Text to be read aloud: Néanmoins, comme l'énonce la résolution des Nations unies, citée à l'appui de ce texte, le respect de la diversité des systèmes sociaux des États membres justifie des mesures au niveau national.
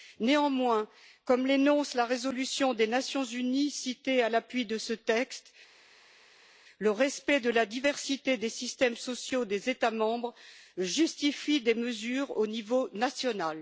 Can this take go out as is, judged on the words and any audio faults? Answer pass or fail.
pass